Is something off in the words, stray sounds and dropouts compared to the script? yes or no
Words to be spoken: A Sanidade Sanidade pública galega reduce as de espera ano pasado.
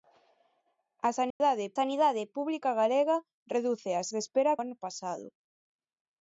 yes